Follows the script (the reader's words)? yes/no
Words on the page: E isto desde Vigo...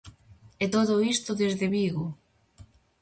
no